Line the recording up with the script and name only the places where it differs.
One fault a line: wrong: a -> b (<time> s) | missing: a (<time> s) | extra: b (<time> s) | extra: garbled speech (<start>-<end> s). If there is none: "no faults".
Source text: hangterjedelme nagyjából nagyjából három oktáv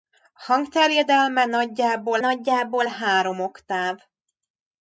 no faults